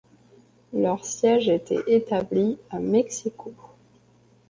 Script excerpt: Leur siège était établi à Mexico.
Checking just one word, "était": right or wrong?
right